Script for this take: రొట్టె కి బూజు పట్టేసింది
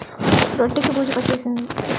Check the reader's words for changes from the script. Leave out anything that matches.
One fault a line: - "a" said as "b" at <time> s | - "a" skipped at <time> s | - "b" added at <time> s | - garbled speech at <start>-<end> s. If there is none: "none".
none